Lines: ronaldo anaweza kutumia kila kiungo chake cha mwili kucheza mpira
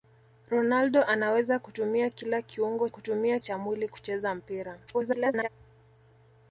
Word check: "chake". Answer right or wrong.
wrong